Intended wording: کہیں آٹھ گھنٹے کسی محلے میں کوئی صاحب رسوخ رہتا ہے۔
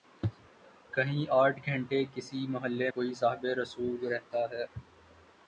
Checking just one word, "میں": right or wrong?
wrong